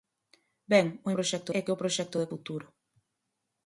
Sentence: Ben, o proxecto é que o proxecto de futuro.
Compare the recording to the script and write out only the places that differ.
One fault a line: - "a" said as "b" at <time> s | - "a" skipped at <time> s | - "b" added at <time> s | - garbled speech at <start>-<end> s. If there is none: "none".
none